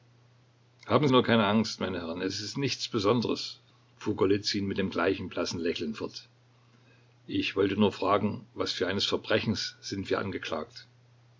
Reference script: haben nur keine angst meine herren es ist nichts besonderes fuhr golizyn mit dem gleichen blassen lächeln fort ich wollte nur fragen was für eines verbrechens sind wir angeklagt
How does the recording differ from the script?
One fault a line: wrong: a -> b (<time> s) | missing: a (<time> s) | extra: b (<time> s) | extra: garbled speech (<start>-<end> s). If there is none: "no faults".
no faults